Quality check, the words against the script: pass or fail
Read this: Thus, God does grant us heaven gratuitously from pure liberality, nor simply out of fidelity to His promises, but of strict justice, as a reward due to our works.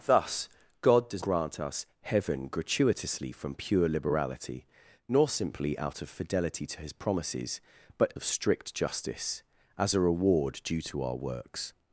pass